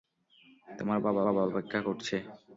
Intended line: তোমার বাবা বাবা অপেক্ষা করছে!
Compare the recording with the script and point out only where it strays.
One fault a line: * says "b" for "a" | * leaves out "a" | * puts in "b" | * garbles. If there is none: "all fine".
all fine